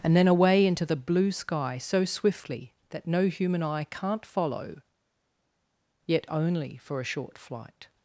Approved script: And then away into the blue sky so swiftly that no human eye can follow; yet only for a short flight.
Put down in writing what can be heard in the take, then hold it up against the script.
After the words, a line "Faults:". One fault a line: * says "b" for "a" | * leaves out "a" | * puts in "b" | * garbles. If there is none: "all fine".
And then away into the blue sky so swiftly that no human eye can't follow; yet only for a short flight.
Faults:
* says "can't" for "can"